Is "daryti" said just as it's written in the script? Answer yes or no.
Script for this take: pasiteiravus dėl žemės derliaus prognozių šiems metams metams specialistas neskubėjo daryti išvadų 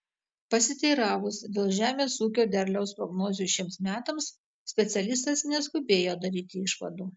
yes